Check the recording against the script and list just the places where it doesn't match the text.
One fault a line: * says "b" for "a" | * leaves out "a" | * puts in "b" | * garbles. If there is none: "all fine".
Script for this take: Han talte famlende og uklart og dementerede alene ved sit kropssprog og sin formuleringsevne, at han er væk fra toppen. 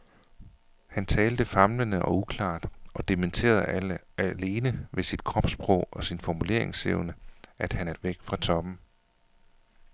all fine